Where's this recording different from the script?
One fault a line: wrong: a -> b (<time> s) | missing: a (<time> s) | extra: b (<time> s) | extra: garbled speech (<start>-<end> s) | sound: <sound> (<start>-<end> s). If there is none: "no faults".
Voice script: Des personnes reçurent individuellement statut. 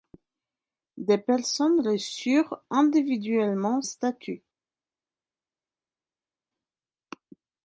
no faults